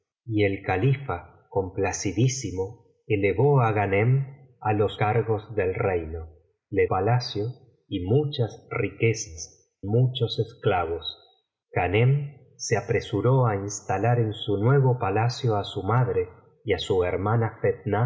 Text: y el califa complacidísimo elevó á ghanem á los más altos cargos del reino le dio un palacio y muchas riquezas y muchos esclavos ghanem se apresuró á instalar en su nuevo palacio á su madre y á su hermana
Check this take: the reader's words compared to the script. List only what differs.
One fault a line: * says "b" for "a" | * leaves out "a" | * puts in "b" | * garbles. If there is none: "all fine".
* leaves out "más altos"
* leaves out "dio un"
* leaves out "y"